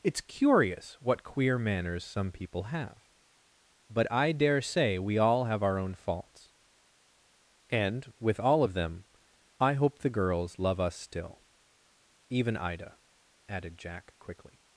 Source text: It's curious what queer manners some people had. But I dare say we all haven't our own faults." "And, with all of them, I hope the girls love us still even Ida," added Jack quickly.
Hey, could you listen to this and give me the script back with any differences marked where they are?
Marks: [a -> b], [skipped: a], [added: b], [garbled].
It's curious what queer manners some people [had. -> have] But I dare say we all [haven't -> have] our own faults." "And, with all of them, I hope the girls love us still even Ida," added Jack quickly.